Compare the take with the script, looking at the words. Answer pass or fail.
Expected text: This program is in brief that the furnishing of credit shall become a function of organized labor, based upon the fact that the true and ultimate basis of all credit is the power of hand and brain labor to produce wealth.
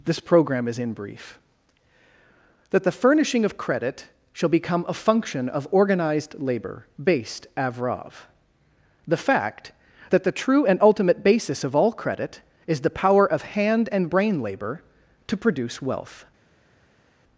fail